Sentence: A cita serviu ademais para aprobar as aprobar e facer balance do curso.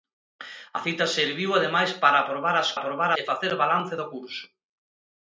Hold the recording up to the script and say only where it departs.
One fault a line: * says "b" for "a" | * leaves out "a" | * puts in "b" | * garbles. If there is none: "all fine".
all fine